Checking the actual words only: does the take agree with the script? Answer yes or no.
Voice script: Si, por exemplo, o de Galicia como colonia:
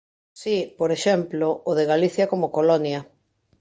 yes